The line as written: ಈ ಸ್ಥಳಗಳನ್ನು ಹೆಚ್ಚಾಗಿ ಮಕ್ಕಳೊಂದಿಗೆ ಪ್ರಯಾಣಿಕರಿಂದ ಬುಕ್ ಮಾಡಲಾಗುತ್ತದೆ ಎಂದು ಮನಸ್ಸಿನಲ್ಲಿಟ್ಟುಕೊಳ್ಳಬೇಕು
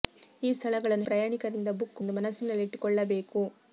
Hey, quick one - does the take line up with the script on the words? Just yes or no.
no